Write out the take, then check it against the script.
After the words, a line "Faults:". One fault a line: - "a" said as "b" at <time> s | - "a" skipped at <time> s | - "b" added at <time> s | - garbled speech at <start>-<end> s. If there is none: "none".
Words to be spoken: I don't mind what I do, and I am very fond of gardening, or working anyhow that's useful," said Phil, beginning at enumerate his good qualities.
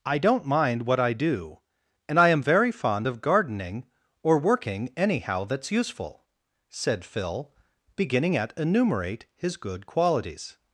I don't mind what I do, and I am very fond of gardening, or working anyhow that's useful," said Phil, beginning at enumerate his good qualities.
Faults:
none